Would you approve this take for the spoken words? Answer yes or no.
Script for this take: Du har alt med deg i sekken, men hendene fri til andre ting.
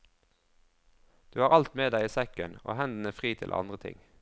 no